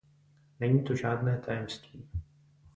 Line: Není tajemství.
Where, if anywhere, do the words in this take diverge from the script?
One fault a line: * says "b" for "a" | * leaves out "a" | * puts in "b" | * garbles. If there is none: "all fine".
* puts in "to žádné"